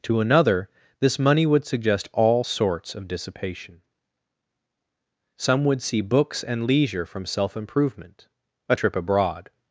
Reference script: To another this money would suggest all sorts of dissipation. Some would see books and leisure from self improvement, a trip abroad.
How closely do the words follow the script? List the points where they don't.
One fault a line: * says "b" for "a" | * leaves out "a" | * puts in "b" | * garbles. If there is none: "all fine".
all fine